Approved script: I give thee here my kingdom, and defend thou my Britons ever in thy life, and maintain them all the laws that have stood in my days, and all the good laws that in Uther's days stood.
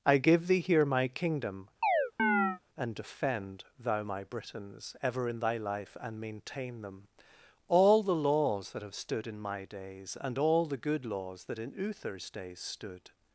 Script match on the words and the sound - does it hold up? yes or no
no